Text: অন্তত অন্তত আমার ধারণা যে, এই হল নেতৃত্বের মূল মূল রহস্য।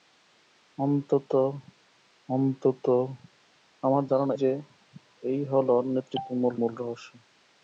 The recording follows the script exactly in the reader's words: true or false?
true